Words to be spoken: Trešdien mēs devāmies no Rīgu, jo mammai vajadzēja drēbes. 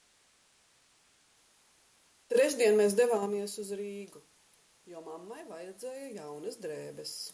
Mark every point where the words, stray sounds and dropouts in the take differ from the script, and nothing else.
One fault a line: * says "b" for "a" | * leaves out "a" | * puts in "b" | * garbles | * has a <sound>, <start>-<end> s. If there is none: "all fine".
* says "uz" for "no"
* puts in "jaunas"